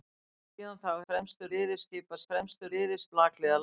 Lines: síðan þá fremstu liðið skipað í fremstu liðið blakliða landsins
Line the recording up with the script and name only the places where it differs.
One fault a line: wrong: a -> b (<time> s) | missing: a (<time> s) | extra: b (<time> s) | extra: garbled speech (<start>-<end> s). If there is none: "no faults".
no faults